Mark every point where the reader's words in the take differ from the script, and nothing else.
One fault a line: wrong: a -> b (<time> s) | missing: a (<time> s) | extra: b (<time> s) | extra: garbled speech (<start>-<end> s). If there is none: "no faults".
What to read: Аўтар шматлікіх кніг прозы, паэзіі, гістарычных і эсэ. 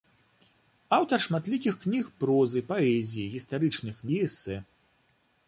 no faults